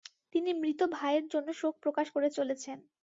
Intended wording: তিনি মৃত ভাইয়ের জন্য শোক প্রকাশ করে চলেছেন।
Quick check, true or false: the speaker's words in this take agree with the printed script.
true